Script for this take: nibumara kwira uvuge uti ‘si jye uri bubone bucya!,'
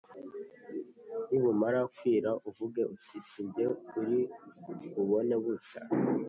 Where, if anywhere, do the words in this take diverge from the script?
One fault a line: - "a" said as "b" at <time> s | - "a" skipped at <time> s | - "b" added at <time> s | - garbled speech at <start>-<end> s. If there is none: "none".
none